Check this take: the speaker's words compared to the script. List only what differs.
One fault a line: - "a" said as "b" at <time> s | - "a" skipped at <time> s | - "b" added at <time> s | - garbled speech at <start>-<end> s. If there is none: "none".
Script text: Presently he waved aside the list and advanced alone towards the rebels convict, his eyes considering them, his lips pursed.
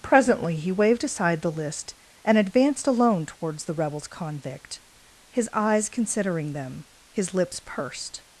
none